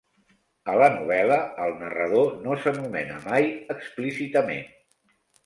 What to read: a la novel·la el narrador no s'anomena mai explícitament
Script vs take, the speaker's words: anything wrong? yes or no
no